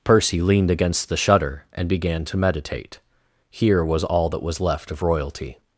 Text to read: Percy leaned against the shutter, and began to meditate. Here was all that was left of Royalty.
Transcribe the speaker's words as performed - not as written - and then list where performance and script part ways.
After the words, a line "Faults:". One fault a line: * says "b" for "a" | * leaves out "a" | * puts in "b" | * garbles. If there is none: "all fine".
Percy leaned against the shutter, and began to meditate. Here was all that was left of Royalty.
Faults:
all fine